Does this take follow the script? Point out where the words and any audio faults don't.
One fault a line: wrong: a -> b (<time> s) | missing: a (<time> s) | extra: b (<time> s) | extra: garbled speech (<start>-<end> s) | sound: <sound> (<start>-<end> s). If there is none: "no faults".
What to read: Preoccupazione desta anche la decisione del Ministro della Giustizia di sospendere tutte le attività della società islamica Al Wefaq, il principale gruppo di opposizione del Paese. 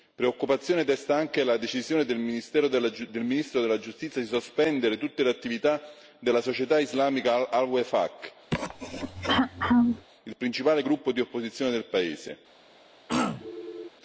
sound: throat clearing (8.5-10.1 s)
sound: throat clearing (13.1-13.9 s)